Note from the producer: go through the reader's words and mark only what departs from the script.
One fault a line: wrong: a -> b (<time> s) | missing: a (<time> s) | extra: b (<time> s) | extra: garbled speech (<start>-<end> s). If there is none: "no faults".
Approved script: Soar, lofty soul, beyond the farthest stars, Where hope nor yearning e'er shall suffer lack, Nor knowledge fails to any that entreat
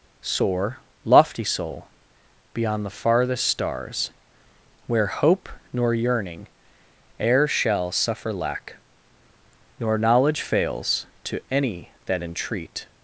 no faults